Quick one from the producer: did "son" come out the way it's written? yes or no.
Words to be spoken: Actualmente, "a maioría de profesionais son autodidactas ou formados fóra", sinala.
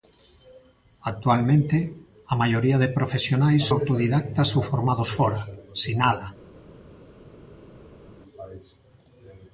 no